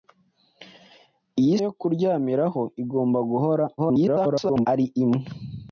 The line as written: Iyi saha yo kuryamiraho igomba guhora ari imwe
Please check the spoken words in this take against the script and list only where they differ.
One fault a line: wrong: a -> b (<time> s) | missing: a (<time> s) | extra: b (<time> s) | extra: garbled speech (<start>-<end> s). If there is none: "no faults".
missing: saha (1.6 s)
extra: garbled speech (3.8-4.7 s)